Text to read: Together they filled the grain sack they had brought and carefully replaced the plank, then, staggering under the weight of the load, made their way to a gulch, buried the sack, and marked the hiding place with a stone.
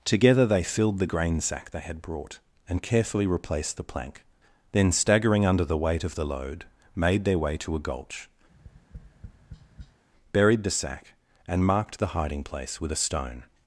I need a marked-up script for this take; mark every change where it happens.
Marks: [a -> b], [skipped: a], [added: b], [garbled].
Together they filled the grain sack they had brought and carefully replaced the plank, then, staggering under the weight of the load, made their way to a gulch, buried the sack, and marked the hiding place with a stone.